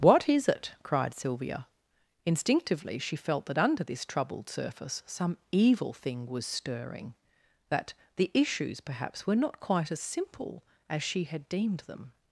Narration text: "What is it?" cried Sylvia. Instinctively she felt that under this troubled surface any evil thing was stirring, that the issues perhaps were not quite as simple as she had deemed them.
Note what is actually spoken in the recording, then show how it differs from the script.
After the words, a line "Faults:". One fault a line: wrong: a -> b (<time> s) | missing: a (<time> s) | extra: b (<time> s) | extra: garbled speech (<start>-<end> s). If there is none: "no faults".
"What is it?" cried Sylvia. Instinctively she felt that under this troubled surface some evil thing was stirring, that the issues perhaps were not quite as simple as she had deemed them.
Faults:
wrong: any -> some (5.0 s)